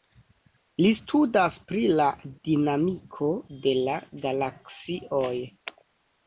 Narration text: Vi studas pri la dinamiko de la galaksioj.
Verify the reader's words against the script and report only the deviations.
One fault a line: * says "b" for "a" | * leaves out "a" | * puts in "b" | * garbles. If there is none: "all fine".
* says "Li" for "Vi"